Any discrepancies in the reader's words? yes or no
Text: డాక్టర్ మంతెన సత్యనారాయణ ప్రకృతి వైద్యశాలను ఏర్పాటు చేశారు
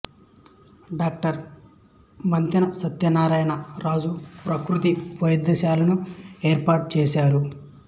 yes